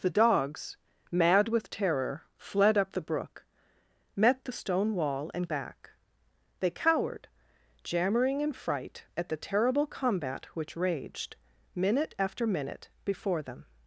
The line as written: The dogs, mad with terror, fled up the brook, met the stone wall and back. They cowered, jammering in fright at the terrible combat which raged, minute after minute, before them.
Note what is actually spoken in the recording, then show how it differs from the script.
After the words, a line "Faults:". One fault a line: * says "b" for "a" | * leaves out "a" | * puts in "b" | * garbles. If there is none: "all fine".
The dogs, mad with terror, fled up the brook, met the stone wall and back. They cowered, jammering in fright at the terrible combat which raged, minute after minute, before them.
Faults:
all fine